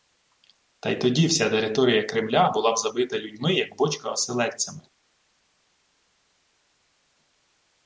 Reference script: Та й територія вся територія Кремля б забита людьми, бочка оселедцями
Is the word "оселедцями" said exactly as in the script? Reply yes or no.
yes